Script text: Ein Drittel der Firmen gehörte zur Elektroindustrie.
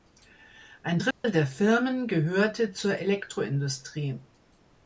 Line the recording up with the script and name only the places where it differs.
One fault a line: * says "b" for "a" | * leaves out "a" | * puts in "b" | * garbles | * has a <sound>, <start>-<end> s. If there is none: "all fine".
* has a dropout, 1.1-1.2 s